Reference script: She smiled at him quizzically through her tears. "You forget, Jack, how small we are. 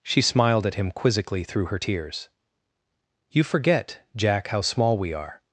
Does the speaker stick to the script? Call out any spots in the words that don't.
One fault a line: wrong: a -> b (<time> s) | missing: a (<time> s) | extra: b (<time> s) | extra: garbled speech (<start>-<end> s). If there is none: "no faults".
no faults